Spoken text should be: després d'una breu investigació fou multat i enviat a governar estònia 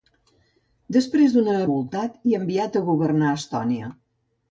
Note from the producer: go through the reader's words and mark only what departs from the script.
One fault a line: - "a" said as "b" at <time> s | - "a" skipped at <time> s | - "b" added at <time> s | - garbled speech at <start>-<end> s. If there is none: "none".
- "breu investigació fou" skipped at 1.6 s